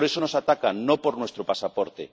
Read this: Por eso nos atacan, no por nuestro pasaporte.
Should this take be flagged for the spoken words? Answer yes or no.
no